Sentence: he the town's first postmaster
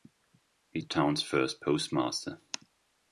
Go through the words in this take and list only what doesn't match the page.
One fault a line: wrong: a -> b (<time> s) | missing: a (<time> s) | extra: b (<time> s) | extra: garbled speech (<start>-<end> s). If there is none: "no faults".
no faults